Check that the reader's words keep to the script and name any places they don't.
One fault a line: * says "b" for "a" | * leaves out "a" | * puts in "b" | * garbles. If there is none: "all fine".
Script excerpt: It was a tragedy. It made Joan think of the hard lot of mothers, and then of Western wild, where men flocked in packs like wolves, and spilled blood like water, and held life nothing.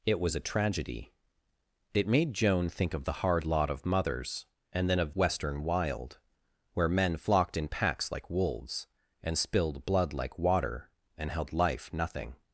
all fine